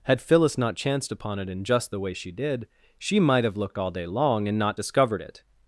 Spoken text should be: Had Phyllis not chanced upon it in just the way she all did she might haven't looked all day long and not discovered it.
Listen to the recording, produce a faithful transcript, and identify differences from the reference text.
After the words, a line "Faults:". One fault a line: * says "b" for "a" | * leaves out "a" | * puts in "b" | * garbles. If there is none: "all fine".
Had Phyllis not chanced upon it in just the way she did she might have looked all day long and not discovered it.
Faults:
* leaves out "all"
* says "have" for "haven't"